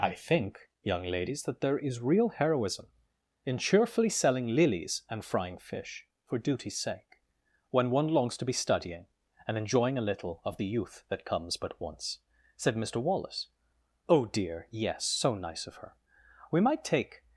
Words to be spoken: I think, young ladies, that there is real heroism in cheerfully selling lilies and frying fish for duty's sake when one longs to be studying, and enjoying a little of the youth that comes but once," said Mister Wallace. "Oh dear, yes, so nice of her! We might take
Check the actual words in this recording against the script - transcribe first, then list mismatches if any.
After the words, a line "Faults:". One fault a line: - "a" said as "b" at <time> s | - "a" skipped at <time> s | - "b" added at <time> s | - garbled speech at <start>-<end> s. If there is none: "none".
I think, young ladies, that there is real heroism in cheerfully selling lilies and frying fish for duty's sake when one longs to be studying, and enjoying a little of the youth that comes but once," said Mister Wallace. "Oh dear, yes, so nice of her! We might take
Faults:
none